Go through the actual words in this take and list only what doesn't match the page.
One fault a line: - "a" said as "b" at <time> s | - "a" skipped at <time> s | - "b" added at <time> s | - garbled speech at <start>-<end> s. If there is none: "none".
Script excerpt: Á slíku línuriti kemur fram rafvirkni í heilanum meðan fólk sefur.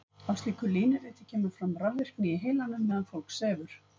none